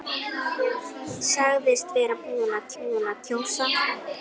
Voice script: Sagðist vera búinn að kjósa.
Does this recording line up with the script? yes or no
no